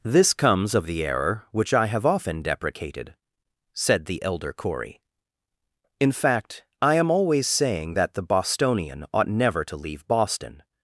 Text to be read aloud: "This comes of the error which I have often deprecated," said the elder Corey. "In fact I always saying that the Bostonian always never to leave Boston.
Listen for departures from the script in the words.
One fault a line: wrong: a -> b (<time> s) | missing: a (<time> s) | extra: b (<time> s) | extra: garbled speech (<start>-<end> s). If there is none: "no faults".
extra: am (7.0 s)
wrong: always -> ought (9.1 s)